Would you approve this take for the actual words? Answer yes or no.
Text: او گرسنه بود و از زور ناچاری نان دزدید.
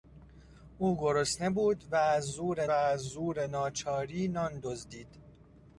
no